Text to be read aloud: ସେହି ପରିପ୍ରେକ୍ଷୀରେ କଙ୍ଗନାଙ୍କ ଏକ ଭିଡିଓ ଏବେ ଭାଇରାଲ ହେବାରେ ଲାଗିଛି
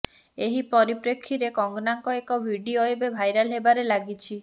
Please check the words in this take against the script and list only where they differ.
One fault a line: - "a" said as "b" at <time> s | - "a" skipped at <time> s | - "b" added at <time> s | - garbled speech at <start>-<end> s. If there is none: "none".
- "ସେହି" said as "ଏହି" at 0.4 s